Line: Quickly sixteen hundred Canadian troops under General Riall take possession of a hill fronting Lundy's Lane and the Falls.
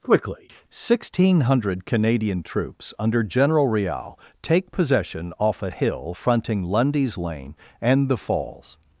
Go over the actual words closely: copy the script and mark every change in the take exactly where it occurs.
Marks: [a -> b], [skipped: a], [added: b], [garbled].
Quickly sixteen hundred Canadian troops under General Riall take possession [of -> off] a hill fronting Lundy's Lane and the Falls.